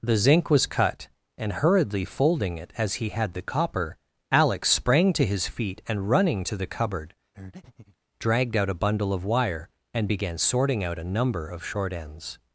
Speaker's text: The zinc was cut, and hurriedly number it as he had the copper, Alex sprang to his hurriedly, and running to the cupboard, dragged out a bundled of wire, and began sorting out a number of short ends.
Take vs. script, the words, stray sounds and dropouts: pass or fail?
fail